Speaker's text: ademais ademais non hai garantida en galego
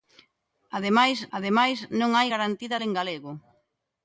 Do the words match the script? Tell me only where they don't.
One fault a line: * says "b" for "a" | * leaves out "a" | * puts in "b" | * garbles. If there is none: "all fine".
all fine